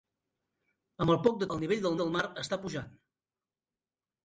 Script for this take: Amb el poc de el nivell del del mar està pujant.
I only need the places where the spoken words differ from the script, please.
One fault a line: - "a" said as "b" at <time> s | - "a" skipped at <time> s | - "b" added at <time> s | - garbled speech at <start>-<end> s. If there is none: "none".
none